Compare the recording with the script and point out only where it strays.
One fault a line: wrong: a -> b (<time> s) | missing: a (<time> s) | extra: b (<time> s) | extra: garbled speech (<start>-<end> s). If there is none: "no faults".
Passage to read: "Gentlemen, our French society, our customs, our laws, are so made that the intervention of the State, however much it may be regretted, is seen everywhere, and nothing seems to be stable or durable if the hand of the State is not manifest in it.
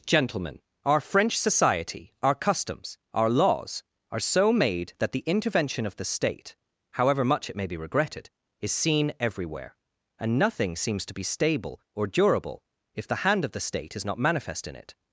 no faults